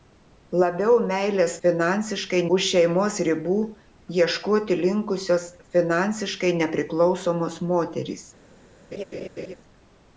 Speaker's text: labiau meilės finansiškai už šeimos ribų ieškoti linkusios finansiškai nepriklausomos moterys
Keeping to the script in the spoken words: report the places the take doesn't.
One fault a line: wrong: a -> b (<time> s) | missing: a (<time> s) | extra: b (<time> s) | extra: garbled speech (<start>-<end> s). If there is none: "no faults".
no faults